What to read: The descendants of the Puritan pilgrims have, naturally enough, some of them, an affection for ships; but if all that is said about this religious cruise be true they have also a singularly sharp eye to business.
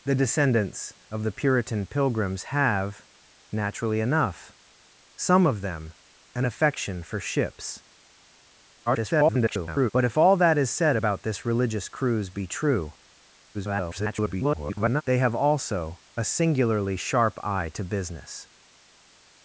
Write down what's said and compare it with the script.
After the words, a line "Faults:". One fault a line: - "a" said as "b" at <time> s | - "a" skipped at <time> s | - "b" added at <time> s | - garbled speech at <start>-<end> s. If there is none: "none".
The descendants of the Puritan pilgrims have, naturally enough, some of them, an affection for ships; [garbled] but if all that is said about this religious cruise be true [garbled] they have also a singularly sharp eye to business.
Faults:
- garbled speech at 8.9-9.9 s
- garbled speech at 13.5-15.0 s